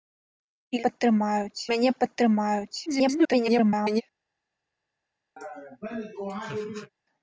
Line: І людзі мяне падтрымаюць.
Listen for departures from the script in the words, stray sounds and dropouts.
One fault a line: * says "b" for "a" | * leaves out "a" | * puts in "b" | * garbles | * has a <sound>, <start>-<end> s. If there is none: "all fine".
* says "падтрымаюць" for "людзі"
* garbles
* has a laugh, 5.4-6.9 s